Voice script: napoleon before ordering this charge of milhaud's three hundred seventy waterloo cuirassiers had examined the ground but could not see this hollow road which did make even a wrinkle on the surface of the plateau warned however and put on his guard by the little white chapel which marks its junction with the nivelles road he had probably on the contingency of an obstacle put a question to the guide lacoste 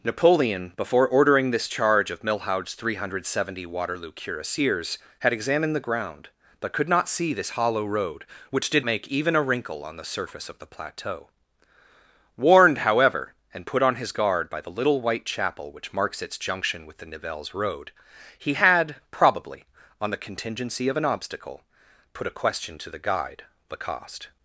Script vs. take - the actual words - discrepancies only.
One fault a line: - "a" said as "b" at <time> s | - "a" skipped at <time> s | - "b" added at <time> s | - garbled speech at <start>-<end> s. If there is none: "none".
none